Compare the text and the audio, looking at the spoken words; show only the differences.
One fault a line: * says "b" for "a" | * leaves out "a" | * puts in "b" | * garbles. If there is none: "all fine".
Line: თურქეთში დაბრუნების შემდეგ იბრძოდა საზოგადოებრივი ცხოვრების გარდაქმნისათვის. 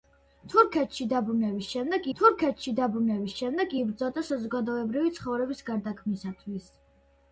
* puts in "თურქეთში დაბრუნების შემდეგ"